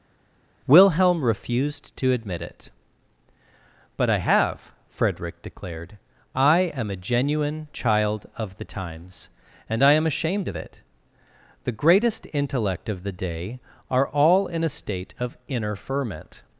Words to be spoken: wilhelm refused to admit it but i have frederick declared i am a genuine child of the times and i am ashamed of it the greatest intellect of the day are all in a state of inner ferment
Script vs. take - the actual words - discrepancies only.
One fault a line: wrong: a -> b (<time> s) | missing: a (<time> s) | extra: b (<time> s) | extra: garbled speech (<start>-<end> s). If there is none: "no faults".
no faults